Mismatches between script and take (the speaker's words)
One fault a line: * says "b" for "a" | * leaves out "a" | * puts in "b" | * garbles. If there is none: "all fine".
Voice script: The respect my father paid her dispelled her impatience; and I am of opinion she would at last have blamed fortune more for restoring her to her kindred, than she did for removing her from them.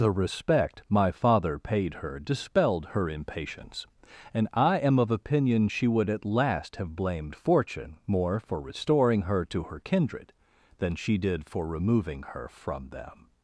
all fine